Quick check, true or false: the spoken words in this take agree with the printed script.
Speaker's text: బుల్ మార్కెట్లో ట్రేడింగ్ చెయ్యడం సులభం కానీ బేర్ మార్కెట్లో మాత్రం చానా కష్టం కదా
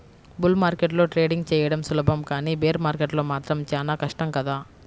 true